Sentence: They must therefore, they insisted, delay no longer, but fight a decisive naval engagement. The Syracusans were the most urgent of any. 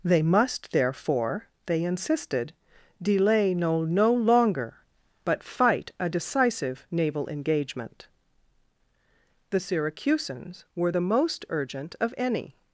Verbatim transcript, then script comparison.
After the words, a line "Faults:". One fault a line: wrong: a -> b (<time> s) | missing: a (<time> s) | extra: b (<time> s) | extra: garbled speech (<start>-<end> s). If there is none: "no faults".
They must therefore, they insisted, delay no no longer, but fight a decisive naval engagement. The Syracusans were the most urgent of any.
Faults:
extra: no (3.9 s)